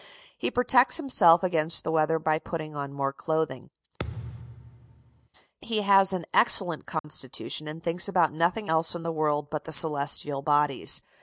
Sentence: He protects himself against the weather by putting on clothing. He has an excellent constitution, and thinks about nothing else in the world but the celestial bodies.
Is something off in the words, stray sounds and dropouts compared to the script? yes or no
yes